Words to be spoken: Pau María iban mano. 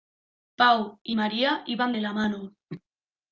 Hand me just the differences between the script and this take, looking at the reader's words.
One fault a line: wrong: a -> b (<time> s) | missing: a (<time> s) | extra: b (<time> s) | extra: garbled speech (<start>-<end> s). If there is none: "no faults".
extra: y (1.0 s)
extra: de la (1.9 s)